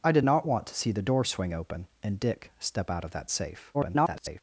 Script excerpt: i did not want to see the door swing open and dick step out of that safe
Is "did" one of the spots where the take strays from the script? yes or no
no